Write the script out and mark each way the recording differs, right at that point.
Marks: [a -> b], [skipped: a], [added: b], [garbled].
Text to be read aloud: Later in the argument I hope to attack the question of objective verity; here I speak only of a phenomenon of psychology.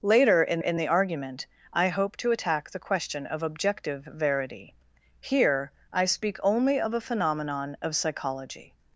Later in [added: in] the argument I hope to attack the question of objective verity; here I speak only of a phenomenon of psychology.